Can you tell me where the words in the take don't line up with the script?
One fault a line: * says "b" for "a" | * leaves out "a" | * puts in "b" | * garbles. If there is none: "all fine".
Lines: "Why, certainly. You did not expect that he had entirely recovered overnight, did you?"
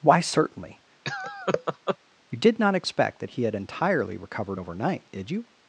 all fine